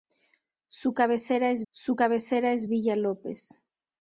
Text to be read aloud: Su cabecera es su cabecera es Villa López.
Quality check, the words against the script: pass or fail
pass